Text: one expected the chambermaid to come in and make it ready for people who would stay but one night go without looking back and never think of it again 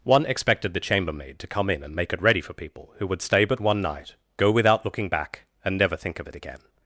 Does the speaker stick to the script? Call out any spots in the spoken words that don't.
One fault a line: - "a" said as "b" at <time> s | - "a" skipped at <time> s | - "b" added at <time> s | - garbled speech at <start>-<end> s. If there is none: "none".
none